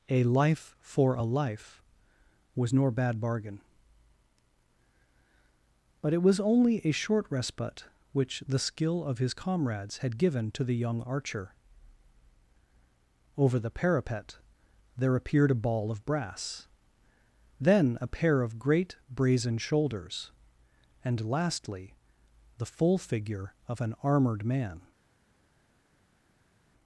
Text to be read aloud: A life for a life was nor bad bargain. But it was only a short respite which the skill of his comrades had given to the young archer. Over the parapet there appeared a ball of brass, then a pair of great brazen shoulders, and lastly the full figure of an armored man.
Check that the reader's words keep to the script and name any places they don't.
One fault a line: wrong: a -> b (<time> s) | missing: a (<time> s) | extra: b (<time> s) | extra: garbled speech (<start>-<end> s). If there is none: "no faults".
no faults